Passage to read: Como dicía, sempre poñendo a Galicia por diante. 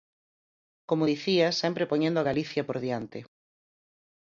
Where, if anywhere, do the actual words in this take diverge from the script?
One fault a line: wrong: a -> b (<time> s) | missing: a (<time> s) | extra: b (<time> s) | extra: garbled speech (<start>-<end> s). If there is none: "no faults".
no faults